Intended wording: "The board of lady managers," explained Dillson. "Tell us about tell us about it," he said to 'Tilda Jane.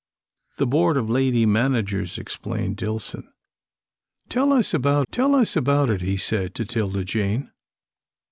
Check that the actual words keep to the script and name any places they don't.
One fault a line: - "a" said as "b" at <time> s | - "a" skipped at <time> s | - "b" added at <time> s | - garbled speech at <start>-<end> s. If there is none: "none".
none